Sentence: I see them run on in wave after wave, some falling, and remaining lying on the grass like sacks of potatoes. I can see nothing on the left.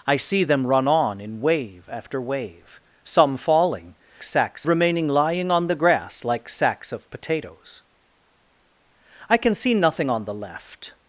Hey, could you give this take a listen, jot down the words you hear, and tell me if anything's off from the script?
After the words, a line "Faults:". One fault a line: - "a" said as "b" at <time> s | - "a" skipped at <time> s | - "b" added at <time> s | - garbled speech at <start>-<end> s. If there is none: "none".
I see them run on in wave after wave, some falling, sacks remaining lying on the grass like sacks of potatoes. I can see nothing on the left.
Faults:
- "and" said as "sacks" at 4.2 s